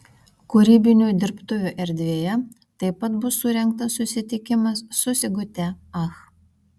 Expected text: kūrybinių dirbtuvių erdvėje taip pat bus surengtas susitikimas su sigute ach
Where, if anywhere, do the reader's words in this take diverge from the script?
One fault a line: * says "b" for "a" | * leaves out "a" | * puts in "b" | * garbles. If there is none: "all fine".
all fine